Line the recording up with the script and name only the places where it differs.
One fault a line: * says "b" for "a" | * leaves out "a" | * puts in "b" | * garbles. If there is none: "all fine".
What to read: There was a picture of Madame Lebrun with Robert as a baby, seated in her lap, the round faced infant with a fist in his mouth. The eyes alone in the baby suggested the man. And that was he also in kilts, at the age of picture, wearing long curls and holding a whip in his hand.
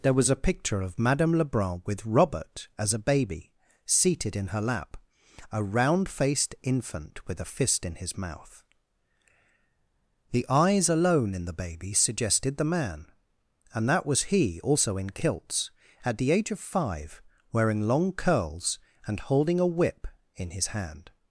* says "a" for "the"
* says "five" for "picture"